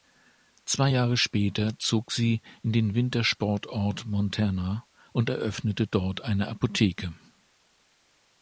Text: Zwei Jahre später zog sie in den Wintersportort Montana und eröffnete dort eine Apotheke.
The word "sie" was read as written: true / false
true